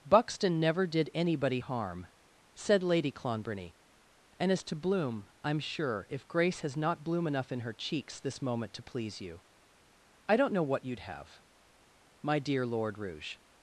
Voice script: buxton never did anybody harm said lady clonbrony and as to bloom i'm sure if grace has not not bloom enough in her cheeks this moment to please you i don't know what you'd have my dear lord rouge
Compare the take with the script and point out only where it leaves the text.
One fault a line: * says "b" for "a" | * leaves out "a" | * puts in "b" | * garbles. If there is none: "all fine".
* leaves out "not"